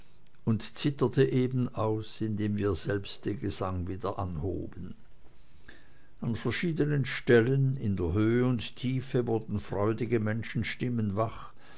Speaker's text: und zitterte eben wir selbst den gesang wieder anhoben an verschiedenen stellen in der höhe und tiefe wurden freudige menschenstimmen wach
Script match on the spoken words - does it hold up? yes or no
no